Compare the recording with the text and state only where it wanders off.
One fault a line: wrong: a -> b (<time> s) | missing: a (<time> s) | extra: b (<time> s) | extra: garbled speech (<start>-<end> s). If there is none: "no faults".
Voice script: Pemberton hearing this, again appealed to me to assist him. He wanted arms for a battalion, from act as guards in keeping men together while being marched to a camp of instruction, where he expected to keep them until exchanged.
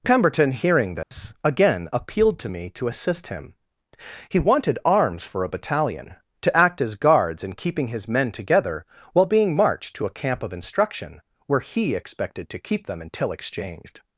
wrong: from -> to (6.4 s)
extra: his (7.9 s)